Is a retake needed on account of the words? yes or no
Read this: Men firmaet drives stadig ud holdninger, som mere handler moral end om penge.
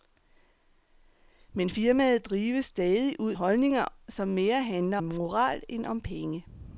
no